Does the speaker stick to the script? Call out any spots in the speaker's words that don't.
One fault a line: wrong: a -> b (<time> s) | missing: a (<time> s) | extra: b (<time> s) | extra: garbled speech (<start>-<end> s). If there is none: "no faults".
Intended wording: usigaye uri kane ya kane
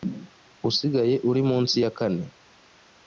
wrong: kane -> munsi (1.5 s)